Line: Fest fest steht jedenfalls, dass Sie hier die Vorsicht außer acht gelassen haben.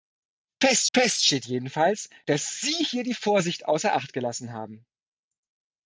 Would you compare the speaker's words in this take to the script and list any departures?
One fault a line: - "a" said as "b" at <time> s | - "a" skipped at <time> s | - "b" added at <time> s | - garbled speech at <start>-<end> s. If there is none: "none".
none